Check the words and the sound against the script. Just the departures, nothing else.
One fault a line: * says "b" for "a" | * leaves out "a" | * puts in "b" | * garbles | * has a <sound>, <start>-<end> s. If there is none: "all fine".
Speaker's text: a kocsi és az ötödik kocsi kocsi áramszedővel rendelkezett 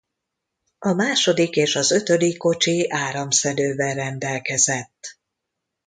* says "második" for "kocsi"
* leaves out "kocsi"